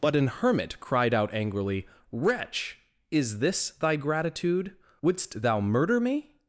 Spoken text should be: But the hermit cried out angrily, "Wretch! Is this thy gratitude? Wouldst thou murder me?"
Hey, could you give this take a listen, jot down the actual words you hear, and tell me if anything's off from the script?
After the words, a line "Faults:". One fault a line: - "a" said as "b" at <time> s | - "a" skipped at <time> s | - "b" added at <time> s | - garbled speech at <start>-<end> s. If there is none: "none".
But an hermit cried out angrily, "Wretch! Is this thy gratitude? Wouldst thou murder me?"
Faults:
- "the" said as "an" at 0.1 s